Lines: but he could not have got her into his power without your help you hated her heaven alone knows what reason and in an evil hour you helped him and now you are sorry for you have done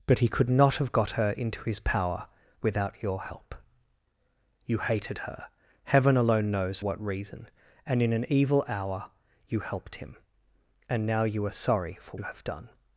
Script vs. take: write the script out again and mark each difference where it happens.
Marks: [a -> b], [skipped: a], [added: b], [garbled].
but he could not have got her into his power without your help you hated her heaven alone knows what reason and in an evil hour you helped him and now you are sorry for you have done